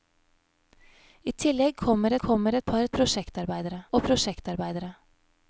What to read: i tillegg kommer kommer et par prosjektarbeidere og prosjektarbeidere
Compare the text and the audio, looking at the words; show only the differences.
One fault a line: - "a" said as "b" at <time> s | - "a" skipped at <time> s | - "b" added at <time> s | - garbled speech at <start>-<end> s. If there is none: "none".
none